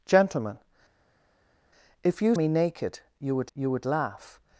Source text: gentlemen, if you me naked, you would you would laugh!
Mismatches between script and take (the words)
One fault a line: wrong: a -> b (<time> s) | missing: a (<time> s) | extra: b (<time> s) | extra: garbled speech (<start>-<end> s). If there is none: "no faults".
no faults